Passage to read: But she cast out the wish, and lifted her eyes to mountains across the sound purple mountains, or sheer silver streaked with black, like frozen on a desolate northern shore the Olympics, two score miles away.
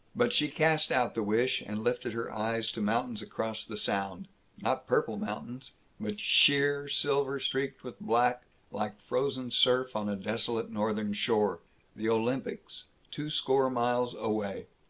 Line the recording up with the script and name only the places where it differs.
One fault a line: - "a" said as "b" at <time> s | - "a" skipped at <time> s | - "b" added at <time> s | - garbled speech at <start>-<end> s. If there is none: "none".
- "not" added at 4.6 s
- "or" said as "but" at 6.0 s
- "surf" added at 9.5 s